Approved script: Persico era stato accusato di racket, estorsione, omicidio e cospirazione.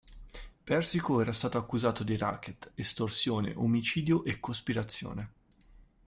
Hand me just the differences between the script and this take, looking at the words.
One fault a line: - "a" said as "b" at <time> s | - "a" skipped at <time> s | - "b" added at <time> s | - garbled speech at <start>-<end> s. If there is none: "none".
none